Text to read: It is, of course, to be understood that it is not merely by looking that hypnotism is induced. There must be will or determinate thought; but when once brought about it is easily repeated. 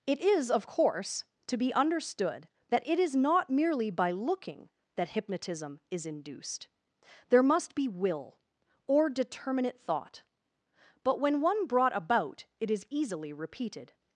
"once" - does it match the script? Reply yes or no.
no